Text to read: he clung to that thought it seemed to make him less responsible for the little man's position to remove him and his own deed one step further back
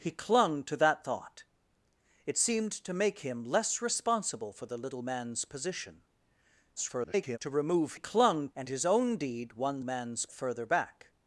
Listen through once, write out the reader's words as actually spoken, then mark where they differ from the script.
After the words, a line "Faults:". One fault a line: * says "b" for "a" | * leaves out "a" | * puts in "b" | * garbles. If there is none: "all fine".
he clung to that thought it seemed to make him less responsible for the little man's position [garbled] to remove clung and his own deed one man's further back
Faults:
* garbles
* says "clung" for "him"
* says "man's" for "step"